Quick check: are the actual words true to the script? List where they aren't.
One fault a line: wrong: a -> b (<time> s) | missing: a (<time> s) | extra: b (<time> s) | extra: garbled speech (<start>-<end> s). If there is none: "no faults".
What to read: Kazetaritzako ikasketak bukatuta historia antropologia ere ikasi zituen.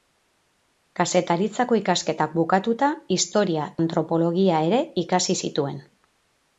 no faults